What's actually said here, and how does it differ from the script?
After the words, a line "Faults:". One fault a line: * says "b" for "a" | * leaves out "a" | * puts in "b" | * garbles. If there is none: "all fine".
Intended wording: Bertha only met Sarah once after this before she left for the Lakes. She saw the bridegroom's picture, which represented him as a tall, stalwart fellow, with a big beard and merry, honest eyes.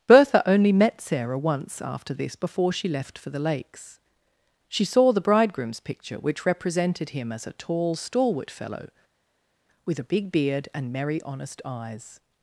Bertha only met Sarah once after this before she left for the Lakes. She saw the bridegroom's picture, which represented him as a tall, stalwart fellow, with a big beard and merry, honest eyes.
Faults:
all fine